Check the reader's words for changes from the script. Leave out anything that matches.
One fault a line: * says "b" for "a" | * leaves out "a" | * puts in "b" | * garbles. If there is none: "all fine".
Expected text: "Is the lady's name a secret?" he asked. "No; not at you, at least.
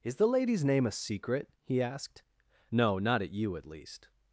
all fine